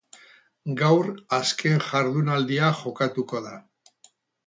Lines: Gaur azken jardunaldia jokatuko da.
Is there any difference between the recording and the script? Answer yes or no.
no